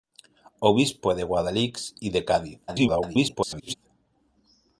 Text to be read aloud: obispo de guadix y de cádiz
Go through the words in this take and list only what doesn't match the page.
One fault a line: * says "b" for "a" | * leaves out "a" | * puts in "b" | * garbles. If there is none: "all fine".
* garbles